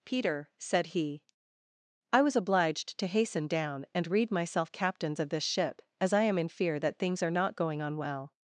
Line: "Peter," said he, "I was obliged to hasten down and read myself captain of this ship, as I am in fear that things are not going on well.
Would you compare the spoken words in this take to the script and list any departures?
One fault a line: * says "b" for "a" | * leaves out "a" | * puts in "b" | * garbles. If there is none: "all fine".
* says "captains" for "captain"